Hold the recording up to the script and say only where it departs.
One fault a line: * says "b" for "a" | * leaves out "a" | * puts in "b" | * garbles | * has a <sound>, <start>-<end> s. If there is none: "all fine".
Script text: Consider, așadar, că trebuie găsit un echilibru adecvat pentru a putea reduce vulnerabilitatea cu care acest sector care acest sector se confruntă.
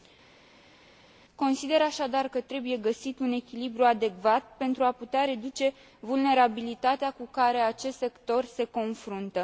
* leaves out "care acest sector"